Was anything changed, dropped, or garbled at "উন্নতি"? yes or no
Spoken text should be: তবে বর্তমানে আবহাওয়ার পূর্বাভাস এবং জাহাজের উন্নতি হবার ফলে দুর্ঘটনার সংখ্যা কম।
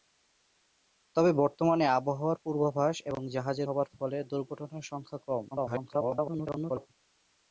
yes